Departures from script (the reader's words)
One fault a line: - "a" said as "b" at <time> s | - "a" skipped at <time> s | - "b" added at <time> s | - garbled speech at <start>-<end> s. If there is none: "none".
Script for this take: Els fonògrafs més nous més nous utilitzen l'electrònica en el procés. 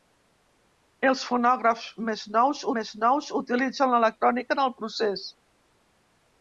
none